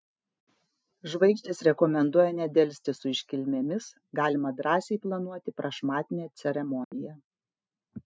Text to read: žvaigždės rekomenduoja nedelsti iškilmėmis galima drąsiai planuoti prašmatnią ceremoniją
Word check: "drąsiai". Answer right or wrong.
right